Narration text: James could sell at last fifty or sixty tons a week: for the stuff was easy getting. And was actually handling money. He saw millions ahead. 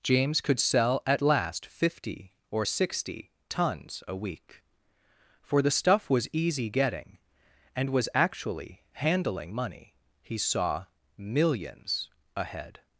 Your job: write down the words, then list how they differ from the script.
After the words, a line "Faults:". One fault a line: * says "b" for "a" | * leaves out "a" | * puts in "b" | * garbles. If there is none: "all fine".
James could sell at last fifty or sixty tons a week: for the stuff was easy getting. And was actually handling money. He saw millions ahead.
Faults:
all fine